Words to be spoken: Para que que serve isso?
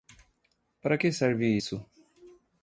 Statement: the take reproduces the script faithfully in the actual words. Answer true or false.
false